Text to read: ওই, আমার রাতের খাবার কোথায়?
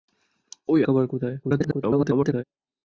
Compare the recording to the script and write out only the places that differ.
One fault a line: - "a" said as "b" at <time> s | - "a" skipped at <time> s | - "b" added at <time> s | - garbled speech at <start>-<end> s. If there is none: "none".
- "আমার রাতের" skipped at 0.8 s
- garbled speech at 1.4-2.4 s